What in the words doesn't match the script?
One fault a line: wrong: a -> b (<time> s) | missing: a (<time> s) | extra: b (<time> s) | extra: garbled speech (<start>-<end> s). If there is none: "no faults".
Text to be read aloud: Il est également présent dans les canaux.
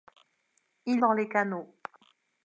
missing: est également présent (1.0 s)